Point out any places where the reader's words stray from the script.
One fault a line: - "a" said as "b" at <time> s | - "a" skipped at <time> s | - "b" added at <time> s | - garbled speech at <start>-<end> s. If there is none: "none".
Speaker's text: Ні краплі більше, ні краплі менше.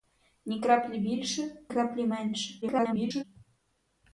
- "ні" skipped at 1.6 s
- garbled speech at 2.6-3.2 s